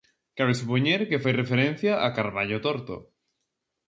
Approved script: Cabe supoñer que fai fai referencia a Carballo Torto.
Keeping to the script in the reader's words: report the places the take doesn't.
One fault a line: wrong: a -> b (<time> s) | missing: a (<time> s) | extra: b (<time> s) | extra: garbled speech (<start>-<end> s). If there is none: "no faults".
missing: fai (1.3 s)